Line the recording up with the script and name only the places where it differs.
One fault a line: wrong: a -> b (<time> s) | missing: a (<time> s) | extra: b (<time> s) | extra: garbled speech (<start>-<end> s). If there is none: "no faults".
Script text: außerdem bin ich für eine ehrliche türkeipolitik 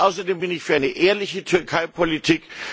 no faults